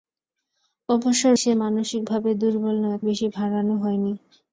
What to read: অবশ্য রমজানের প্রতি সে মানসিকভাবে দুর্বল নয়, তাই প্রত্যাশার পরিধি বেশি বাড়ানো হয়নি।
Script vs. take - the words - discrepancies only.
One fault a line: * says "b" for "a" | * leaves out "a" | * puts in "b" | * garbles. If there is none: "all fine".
* leaves out "রমজানের প্রতি"
* leaves out "তাই প্রত্যাশার পরিধি"